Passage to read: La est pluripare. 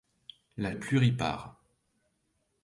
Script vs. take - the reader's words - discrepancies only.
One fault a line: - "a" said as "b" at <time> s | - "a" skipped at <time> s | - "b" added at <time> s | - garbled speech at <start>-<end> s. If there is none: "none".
none